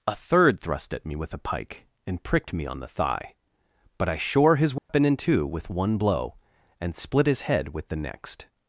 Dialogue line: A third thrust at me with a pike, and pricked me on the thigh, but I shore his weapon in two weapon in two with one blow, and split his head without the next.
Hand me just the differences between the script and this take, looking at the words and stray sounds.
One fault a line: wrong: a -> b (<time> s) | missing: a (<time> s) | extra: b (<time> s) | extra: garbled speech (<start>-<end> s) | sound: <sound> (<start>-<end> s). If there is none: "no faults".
sound: dropout (4.8-4.9 s)
missing: weapon in two (5.5 s)
wrong: without -> with (7.7 s)